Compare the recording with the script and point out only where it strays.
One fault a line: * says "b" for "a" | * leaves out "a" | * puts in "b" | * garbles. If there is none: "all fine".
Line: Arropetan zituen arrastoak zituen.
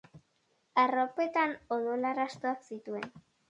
* says "odol" for "zituen"